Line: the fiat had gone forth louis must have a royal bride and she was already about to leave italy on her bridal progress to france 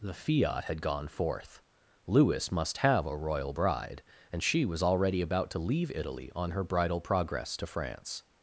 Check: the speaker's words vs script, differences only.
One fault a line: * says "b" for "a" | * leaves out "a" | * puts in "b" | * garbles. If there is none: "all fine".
all fine